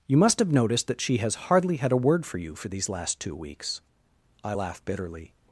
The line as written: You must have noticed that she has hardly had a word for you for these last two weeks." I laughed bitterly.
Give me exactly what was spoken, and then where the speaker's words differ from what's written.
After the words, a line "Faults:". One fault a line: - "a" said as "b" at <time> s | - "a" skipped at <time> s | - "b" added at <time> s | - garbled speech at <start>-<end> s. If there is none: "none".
You must have noticed that she has hardly had a word for you for these last two weeks." I laugh bitterly.
Faults:
- "laughed" said as "laugh" at 4.5 s